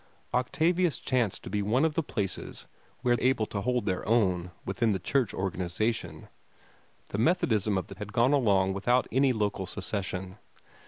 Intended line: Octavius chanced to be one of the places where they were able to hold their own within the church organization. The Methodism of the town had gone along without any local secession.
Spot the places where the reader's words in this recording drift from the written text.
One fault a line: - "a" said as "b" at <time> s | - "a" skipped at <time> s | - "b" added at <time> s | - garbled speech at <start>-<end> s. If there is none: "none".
- "they were" skipped at 3.1 s
- "town" skipped at 7.9 s